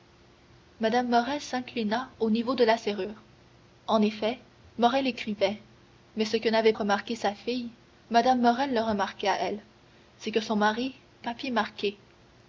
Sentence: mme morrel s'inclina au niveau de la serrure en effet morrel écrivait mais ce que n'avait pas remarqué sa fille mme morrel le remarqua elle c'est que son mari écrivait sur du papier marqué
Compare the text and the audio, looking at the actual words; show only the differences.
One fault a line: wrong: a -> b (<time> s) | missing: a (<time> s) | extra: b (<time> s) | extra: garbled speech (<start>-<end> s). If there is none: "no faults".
missing: pas (6.7 s)
missing: écrivait sur du (11.0 s)